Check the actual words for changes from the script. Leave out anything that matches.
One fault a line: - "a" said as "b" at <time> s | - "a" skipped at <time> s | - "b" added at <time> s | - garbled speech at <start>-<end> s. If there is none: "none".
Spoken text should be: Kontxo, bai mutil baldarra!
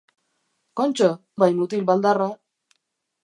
none